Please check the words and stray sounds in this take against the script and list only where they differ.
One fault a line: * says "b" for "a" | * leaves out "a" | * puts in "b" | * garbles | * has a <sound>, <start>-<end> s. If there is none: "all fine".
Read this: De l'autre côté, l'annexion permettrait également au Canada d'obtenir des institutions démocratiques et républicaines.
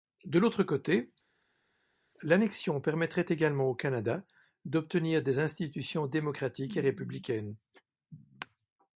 all fine